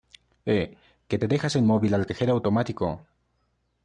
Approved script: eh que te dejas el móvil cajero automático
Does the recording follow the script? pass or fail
fail